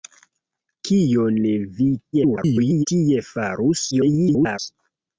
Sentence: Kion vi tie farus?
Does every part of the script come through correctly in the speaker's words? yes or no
no